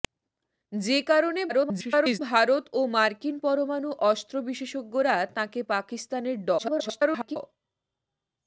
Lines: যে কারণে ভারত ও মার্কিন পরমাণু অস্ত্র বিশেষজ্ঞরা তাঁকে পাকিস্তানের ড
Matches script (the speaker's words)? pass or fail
fail